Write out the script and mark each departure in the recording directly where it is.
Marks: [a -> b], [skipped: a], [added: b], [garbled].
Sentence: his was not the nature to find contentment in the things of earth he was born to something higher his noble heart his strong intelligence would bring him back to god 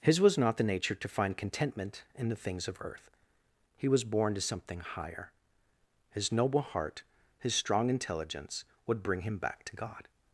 his was not the nature to find contentment in the things of earth he was born to something higher his noble heart his strong intelligence would bring him back to god